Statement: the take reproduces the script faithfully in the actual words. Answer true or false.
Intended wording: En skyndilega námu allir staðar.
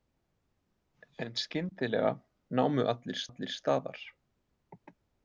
false